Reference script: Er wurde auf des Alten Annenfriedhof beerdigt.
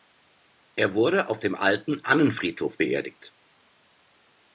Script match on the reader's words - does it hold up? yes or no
no